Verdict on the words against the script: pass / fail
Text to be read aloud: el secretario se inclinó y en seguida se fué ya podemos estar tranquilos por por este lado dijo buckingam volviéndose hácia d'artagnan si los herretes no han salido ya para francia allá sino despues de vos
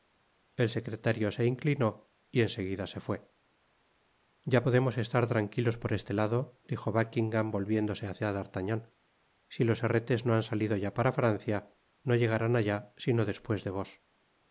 fail